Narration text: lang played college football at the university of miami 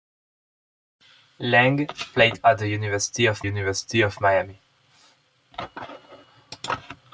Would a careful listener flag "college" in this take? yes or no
yes